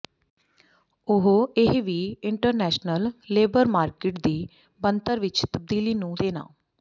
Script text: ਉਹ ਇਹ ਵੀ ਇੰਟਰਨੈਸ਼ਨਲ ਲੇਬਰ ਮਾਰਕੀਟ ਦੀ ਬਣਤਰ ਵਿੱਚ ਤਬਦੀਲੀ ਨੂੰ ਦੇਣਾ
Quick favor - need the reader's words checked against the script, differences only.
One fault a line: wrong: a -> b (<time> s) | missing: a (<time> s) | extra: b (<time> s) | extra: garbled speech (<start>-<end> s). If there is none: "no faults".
no faults